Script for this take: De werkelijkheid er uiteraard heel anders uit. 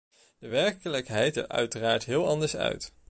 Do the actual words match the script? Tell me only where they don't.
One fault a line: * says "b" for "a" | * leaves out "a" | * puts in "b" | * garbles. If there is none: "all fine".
all fine